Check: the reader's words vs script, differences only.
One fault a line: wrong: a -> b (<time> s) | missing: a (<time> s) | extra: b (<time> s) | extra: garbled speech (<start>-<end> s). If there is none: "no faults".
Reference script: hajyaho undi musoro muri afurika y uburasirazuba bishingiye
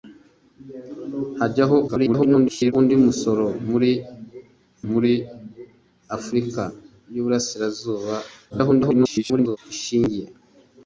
extra: garbled speech (1.9-2.7 s)
extra: muri (4.9 s)
extra: garbled speech (8.5-9.6 s)